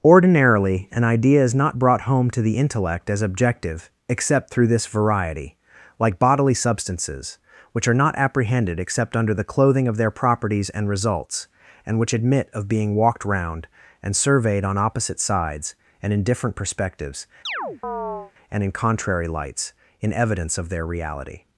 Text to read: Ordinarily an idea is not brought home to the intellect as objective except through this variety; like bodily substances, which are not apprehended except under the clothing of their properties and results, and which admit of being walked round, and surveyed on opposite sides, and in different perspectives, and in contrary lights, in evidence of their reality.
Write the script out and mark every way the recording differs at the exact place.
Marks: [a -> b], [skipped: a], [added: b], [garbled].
Ordinarily an idea is not brought home to the intellect as objective except through this variety; like bodily substances, which are not apprehended except under the clothing of their properties and results, and which admit of being walked round, and surveyed on opposite sides, and in different perspectives, and in contrary lights, in evidence of their reality.